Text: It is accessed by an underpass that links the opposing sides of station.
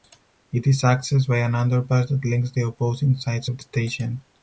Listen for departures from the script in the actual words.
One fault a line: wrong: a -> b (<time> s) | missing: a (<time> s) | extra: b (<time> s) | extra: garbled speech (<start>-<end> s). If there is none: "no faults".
no faults